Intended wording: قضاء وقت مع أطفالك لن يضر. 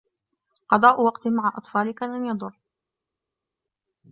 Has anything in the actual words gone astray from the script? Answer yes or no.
no